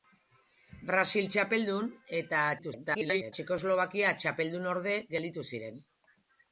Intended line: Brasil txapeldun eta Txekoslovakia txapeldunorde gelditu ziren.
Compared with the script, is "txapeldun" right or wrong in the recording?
right